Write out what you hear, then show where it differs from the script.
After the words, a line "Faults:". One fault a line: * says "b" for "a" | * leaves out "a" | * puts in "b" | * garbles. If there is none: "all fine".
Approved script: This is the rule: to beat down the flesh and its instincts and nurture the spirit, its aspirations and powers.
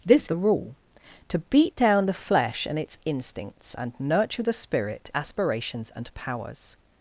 This the rule: to beat down the flesh and its instincts and nurture the spirit, aspirations and powers.
Faults:
* leaves out "is"
* leaves out "its"